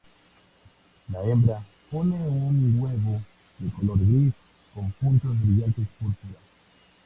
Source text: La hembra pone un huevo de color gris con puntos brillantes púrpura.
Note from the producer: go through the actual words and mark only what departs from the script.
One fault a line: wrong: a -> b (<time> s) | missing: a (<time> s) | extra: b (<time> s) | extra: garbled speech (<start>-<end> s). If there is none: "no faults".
no faults